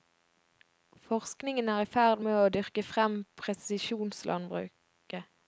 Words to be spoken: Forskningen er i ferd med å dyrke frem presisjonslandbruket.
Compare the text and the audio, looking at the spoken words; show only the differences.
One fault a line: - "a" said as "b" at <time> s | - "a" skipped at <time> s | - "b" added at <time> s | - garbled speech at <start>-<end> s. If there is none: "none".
none